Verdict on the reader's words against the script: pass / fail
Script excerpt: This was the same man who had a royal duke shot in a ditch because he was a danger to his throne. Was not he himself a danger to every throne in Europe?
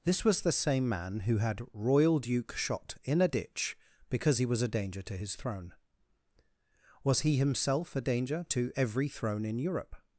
fail